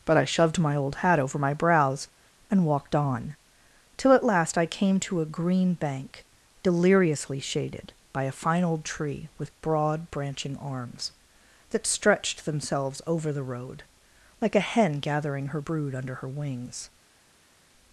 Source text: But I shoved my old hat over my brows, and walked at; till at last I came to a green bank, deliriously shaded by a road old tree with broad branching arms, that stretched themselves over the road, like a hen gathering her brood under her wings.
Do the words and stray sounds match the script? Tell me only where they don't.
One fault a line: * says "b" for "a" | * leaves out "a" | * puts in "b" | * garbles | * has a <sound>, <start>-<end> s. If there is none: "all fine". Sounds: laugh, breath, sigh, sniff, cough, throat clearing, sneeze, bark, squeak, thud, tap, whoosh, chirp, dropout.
* says "on" for "at"
* says "fine" for "road"